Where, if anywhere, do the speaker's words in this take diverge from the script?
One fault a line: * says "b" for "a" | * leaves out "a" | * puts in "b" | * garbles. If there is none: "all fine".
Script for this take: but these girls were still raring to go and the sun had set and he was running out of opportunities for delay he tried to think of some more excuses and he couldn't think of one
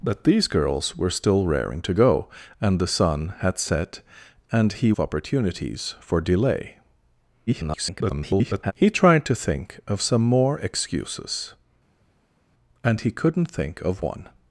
* leaves out "was running out"
* garbles